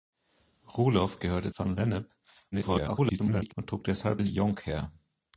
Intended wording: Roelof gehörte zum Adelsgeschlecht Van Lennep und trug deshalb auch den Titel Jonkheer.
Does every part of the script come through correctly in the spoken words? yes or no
no